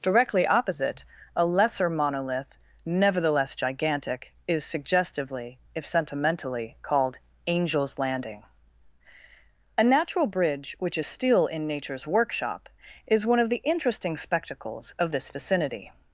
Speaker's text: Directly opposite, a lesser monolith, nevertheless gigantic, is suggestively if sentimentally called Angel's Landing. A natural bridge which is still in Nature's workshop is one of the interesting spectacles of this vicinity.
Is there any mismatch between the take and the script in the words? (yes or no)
no